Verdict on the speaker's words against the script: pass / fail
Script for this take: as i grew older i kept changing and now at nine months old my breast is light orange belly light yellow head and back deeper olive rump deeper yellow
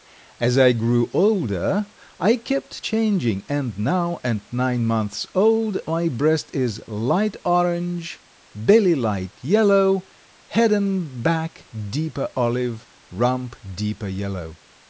pass